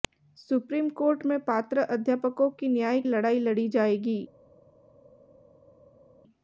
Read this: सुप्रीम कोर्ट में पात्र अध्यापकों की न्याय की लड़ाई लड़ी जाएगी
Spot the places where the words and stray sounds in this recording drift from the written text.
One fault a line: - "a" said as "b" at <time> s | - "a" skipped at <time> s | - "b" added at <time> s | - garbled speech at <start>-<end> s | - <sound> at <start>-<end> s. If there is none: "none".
- "की" skipped at 3.0 s